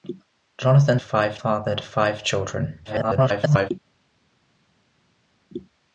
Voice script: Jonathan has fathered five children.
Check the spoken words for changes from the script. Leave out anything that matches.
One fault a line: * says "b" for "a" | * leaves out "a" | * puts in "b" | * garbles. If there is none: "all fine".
* says "five" for "has"
* garbles